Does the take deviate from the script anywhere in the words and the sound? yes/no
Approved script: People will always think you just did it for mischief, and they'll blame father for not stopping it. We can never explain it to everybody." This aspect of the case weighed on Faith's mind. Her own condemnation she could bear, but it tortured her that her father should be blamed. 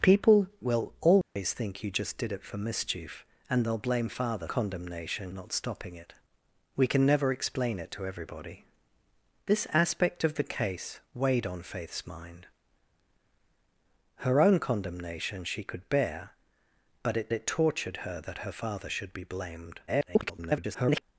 yes